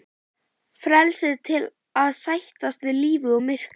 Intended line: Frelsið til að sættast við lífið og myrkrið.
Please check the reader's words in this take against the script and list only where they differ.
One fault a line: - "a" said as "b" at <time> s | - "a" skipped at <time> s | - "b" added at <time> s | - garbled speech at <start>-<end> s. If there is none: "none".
none